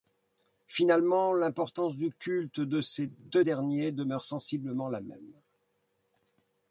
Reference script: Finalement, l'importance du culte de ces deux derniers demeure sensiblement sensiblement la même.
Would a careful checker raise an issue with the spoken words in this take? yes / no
yes